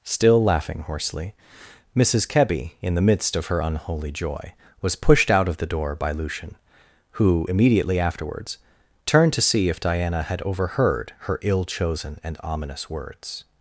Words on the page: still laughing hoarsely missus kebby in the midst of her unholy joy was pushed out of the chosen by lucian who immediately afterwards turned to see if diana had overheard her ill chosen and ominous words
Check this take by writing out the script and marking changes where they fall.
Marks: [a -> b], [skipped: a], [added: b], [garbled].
still laughing hoarsely missus kebby in the midst of her unholy joy was pushed out of the [chosen -> door] by lucian who immediately afterwards turned to see if diana had overheard her ill chosen and ominous words